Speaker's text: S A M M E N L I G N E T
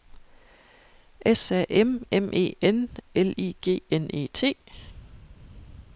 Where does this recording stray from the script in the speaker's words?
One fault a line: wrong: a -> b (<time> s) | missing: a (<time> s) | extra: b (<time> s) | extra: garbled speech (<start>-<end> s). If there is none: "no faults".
no faults